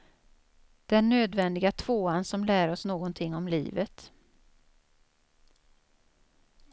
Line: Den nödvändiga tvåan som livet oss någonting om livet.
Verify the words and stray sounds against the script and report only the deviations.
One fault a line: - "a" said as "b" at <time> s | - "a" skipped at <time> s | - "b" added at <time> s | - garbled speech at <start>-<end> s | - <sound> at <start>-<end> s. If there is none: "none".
- "livet" said as "lär" at 2.5 s